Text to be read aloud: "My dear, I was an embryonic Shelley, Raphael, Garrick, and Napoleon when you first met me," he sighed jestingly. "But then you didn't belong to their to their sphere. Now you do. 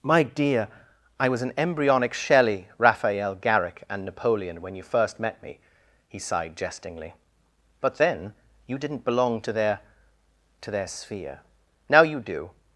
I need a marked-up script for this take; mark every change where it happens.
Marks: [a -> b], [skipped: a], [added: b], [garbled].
"My dear, I was an embryonic Shelley, Raphael, Garrick, and Napoleon when you first met me," he sighed jestingly. "But then you didn't belong to their to their sphere. Now you do.